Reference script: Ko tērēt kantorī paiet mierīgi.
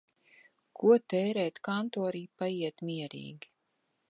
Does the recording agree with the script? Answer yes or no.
yes